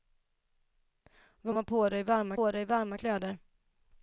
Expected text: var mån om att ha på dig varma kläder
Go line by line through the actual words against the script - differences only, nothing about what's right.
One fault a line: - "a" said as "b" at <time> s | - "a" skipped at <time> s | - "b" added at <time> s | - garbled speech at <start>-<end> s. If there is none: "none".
- "mån" skipped at 1.5 s
- "på dig varma" added at 2.4 s